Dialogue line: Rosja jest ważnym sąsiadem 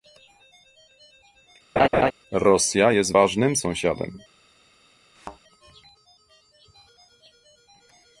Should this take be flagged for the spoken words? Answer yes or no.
no